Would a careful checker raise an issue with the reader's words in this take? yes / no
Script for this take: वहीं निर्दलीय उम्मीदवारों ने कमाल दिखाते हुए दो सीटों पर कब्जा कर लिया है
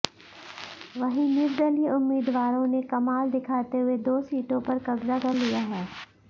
no